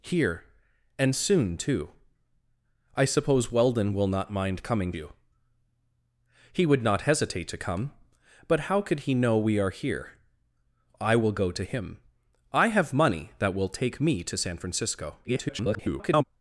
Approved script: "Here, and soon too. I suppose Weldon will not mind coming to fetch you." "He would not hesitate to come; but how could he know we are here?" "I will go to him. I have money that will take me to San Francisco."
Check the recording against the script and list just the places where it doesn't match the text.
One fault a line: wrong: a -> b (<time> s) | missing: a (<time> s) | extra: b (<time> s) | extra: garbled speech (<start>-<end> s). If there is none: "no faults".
missing: to fetch (4.9 s)
extra: garbled speech (15.2-16.2 s)